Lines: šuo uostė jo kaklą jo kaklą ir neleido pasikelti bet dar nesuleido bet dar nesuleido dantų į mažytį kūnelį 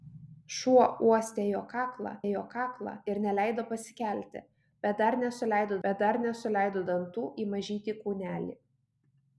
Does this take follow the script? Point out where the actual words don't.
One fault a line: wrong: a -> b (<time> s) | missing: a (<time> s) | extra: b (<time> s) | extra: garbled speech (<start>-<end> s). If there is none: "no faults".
no faults